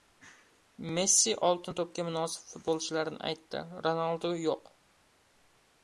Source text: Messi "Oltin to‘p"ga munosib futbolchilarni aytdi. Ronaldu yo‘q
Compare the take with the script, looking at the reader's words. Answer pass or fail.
pass